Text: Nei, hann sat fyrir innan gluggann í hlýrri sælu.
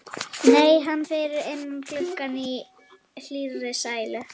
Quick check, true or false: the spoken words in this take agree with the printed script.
false